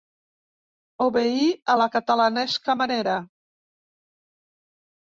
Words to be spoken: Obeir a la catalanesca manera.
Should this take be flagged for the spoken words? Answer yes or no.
no